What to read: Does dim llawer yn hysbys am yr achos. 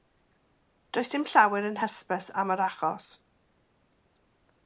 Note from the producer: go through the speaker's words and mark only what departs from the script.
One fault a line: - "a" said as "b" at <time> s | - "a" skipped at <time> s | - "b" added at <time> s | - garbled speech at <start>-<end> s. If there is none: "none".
none